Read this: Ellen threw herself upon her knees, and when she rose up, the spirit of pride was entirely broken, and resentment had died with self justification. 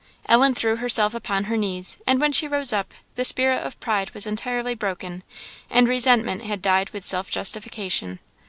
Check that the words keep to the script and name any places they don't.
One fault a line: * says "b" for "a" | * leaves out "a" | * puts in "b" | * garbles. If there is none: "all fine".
all fine